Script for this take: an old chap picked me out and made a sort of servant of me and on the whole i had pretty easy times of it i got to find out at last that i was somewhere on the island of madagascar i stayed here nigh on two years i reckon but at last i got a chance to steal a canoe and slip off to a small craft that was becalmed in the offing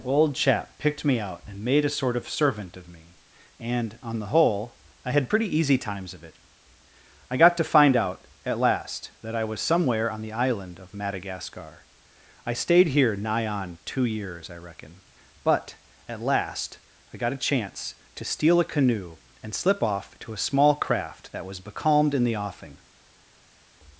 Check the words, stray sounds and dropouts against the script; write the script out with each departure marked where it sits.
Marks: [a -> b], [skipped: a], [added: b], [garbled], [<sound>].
[skipped: an] old chap picked me out and made a sort of servant of me and on the whole i had pretty easy times of it i got to find out at last that i was somewhere on the island of madagascar i stayed here nigh on two years i reckon but at last i got a chance to steal a canoe and slip off to a small craft that was becalmed in the offing